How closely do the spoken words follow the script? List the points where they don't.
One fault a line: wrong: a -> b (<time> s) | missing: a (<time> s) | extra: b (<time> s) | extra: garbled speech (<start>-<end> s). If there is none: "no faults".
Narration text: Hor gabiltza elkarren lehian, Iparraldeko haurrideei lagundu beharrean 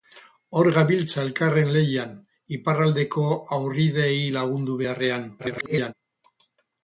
extra: garbled speech (5.4-5.9 s)